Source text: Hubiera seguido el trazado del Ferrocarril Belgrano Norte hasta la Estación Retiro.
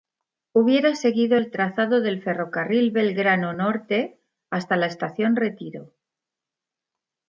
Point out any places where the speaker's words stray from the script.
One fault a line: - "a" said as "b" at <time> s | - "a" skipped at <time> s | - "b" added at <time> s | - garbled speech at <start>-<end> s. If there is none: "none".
none